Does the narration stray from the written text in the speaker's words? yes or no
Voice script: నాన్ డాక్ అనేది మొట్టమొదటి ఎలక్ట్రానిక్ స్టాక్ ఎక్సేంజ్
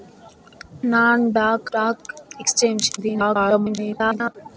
yes